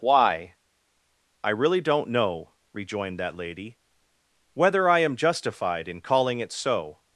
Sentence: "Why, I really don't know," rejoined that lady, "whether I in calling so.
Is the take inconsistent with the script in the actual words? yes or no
yes